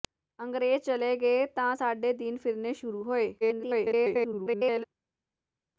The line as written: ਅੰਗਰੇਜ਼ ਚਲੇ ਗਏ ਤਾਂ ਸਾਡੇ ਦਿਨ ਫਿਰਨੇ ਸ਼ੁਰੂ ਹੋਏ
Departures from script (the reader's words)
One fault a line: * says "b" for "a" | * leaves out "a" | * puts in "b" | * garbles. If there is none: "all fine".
* garbles